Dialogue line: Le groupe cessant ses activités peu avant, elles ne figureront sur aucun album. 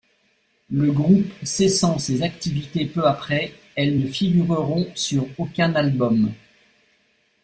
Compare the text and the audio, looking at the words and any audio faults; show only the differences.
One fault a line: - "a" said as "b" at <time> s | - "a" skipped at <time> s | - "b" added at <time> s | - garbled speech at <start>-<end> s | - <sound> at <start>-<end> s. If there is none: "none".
- "avant" said as "après" at 3.1 s